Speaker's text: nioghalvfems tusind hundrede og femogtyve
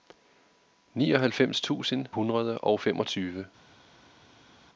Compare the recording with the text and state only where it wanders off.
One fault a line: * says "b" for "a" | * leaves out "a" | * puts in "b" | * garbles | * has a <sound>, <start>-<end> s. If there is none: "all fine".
all fine